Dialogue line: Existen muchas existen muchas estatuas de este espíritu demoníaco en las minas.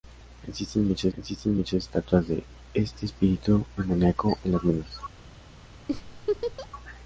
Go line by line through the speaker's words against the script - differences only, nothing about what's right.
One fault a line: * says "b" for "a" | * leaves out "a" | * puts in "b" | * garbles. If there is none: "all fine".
all fine